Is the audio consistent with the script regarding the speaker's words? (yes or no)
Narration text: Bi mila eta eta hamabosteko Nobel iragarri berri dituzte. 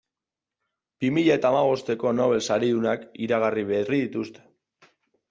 no